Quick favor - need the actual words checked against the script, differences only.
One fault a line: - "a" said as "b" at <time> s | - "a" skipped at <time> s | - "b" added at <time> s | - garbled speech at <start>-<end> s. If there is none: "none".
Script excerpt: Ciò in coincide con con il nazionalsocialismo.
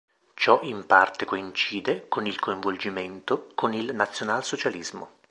- "parte" added at 0.9 s
- "il coinvolgimento" added at 2.3 s